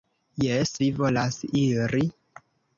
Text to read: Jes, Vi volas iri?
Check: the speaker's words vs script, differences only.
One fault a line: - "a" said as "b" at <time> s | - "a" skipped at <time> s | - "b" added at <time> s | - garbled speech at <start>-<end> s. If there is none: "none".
none